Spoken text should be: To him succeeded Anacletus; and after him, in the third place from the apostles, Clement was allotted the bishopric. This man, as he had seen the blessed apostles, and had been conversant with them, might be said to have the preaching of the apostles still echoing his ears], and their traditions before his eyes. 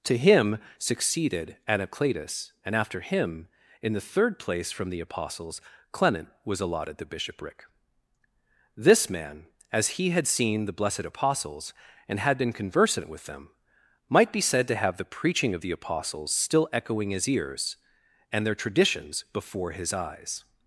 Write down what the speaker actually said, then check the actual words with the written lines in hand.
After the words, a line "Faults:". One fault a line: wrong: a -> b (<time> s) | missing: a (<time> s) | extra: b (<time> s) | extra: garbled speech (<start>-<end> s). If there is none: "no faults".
To him succeeded Anacletus; and after him, in the third place from the apostles, Clement was allotted the bishopric. This man, as he had seen the blessed apostles, and had been conversant with them, might be said to have the preaching of the apostles still echoing his ears], and their traditions before his eyes.
Faults:
no faults